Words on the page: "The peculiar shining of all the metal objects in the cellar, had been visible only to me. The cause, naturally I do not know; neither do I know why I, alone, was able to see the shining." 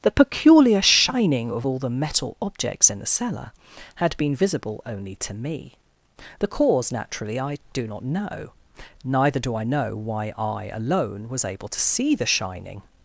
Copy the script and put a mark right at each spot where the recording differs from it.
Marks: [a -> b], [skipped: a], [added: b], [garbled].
"The peculiar shining of all the metal objects in the cellar, had been visible only to me. The cause, naturally I do not know; neither do I know why I, alone, was able to see the shining."